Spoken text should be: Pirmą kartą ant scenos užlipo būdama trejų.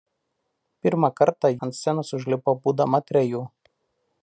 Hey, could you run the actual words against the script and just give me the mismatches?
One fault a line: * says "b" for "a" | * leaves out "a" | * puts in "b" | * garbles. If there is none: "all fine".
all fine